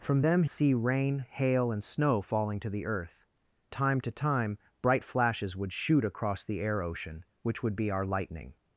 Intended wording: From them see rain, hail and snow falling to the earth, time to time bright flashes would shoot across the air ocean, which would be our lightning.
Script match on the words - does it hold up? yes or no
yes